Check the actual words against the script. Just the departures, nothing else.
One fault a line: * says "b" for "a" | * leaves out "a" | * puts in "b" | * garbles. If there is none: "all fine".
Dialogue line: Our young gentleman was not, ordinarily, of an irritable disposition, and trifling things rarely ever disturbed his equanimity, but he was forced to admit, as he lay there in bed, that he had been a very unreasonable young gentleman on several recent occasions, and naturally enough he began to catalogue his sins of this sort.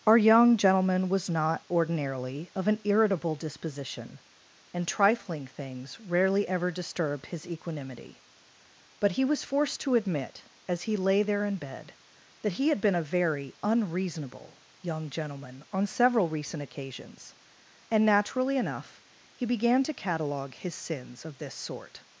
all fine